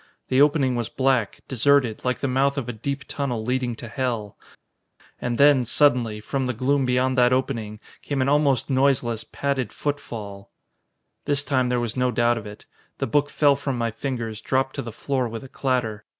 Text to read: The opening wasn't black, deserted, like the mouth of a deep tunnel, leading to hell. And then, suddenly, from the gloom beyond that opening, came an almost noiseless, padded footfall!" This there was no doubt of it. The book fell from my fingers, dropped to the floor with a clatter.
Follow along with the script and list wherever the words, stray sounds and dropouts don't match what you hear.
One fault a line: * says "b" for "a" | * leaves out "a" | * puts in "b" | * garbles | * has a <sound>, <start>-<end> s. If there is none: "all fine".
* says "was" for "wasn't"
* puts in "time"